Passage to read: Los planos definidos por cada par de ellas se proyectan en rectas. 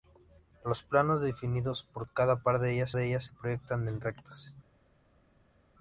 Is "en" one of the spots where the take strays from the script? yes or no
no